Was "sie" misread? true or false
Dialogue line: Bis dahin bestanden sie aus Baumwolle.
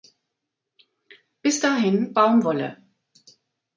true